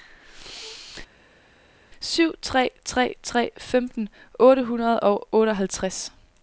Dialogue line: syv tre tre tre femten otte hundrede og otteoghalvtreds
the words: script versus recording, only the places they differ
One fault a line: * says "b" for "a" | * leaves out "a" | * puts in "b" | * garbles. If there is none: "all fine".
all fine